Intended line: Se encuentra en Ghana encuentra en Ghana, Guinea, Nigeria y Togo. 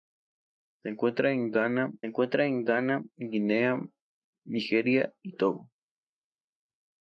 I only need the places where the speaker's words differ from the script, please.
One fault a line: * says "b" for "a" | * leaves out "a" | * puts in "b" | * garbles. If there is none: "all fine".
all fine